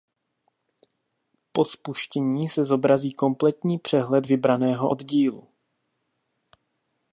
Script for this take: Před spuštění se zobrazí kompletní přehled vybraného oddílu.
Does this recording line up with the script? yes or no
no